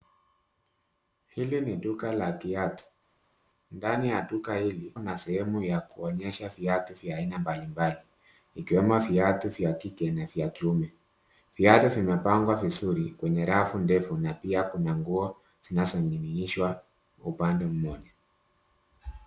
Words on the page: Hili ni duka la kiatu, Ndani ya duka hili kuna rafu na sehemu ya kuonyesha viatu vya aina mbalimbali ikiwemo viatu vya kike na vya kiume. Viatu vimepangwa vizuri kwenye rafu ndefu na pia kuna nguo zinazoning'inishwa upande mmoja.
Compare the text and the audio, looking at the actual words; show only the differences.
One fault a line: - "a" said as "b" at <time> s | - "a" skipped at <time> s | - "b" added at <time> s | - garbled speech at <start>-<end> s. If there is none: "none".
- "kuna rafu" skipped at 5.0 s